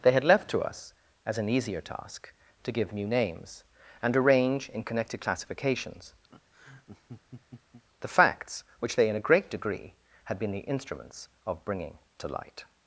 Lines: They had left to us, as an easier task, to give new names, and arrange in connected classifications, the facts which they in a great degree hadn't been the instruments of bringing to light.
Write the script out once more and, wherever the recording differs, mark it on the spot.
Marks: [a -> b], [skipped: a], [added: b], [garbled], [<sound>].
They had left to us, as an easier task, to give new names, and arrange in connected classifications, [laugh] the facts which they in a great degree [hadn't -> had] been the instruments of bringing to light.